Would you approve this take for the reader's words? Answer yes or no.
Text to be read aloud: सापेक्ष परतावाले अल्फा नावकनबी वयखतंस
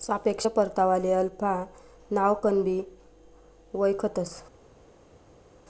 yes